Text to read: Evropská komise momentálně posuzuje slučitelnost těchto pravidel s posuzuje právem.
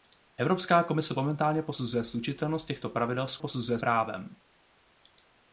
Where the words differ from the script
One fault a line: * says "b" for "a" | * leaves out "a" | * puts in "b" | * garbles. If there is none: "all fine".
all fine